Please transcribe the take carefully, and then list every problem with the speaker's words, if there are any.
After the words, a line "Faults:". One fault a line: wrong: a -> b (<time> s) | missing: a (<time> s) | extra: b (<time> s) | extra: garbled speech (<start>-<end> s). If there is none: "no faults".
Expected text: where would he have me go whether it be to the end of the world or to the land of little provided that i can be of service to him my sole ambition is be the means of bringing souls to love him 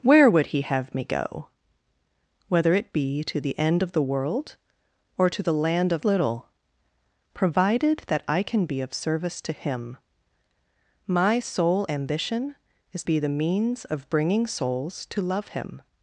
where would he have me go whether it be to the end of the world or to the land of little provided that i can be of service to him my sole ambition is be the means of bringing souls to love him
Faults:
no faults